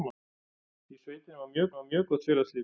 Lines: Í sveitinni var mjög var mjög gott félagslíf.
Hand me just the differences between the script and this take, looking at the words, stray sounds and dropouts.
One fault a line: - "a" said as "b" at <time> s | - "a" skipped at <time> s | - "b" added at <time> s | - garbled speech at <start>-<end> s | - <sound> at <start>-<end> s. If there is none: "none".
none